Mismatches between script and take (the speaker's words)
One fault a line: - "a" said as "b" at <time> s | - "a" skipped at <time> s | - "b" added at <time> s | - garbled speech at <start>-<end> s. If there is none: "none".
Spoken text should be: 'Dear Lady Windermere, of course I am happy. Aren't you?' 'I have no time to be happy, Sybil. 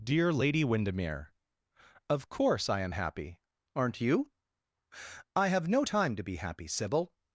none